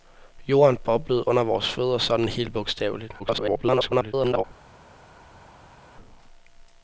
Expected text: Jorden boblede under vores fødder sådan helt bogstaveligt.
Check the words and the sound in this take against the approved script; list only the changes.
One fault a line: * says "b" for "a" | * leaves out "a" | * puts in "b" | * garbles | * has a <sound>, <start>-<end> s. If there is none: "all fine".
* garbles